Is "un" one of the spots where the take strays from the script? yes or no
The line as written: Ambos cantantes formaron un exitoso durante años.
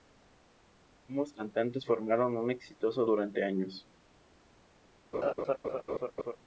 no